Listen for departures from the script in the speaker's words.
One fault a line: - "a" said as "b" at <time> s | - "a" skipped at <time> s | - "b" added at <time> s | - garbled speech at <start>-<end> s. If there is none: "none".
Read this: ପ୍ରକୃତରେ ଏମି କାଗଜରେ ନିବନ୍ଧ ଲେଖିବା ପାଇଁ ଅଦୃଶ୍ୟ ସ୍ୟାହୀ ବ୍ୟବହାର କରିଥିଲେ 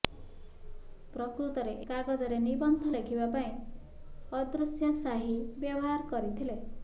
- "ଏମି" skipped at 1.8 s